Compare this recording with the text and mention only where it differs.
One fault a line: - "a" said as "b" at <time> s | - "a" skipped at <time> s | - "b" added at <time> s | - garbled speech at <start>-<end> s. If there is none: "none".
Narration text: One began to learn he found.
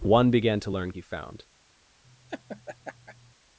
none